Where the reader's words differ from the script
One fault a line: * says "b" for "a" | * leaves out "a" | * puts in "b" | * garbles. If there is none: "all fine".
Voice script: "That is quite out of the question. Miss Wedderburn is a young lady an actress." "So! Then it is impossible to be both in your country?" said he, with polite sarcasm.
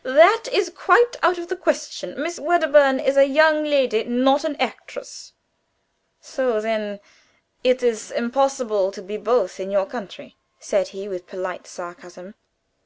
* puts in "not"